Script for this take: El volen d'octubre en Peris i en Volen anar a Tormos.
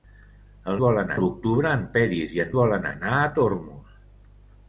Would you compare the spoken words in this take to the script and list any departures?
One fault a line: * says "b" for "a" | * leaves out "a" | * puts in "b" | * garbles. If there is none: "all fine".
all fine